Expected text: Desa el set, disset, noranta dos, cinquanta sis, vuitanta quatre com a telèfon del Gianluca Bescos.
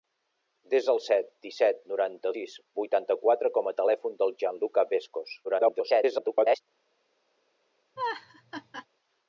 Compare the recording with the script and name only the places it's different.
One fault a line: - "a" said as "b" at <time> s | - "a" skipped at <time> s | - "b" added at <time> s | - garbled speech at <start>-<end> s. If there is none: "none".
- "dos cinquanta" skipped at 2.3 s
- garbled speech at 5.4-6.6 s